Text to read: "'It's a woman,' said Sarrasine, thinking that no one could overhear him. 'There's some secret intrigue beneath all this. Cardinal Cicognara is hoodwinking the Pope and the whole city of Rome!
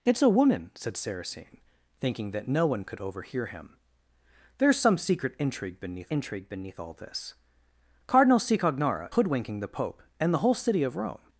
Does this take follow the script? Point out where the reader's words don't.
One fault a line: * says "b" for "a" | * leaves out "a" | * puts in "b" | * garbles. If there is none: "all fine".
* puts in "intrigue beneath"
* leaves out "is"